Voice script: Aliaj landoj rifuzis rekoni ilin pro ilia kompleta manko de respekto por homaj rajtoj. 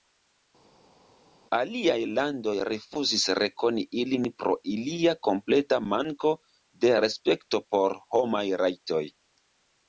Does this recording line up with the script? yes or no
yes